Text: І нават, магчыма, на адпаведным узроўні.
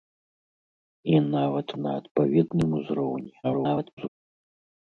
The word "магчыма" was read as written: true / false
false